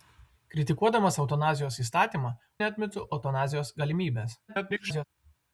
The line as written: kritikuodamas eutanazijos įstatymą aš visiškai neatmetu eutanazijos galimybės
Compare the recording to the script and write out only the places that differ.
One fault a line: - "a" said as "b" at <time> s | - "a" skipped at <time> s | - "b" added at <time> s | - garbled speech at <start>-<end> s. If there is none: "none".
- "aš visiškai" skipped at 2.3 s
- garbled speech at 4.5-5.0 s